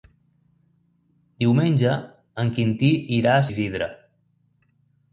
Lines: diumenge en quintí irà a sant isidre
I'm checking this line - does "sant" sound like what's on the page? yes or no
no